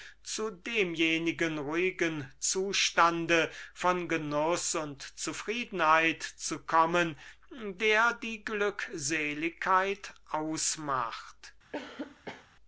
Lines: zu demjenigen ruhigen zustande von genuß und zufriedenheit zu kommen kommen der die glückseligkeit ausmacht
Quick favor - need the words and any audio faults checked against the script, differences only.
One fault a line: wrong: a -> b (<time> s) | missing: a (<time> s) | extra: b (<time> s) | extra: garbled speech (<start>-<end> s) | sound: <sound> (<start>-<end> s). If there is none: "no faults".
missing: kommen (7.2 s)
sound: cough (11.7-12.5 s)